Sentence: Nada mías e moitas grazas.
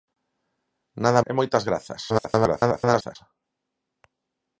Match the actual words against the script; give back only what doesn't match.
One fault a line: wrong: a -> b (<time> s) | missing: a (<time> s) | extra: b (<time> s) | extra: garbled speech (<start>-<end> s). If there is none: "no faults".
missing: mías (1.2 s)
extra: garbled speech (2.1-3.2 s)